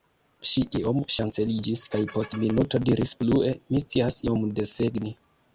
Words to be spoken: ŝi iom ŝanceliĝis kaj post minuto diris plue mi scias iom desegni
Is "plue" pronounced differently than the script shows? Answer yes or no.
no